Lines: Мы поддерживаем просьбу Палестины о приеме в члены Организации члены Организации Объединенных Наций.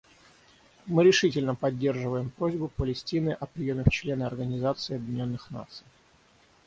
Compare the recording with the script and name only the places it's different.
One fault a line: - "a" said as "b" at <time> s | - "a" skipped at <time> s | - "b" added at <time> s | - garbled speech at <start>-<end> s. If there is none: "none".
- "решительно" added at 1.0 s
- "члены Организации" skipped at 4.9 s